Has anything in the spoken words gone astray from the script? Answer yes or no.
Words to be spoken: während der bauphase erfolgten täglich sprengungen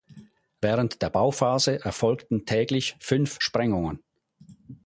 yes